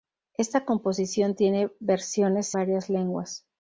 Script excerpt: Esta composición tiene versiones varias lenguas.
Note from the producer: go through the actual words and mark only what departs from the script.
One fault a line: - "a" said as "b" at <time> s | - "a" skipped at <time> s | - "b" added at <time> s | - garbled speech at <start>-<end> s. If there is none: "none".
none